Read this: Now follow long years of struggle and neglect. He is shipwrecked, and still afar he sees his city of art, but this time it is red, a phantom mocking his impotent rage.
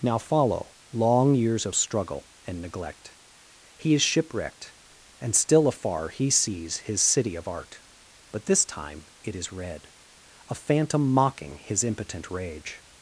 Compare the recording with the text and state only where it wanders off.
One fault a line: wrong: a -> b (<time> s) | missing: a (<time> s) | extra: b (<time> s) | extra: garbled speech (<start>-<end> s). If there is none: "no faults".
no faults